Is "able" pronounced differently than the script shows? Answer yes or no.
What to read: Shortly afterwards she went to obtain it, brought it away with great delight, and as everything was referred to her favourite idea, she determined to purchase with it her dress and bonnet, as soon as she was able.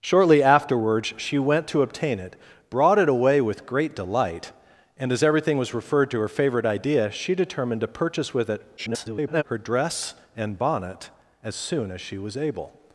no